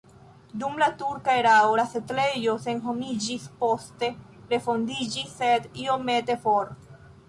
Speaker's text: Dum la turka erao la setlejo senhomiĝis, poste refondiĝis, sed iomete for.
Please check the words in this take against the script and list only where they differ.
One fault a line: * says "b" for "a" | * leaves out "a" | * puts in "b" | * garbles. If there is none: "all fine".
all fine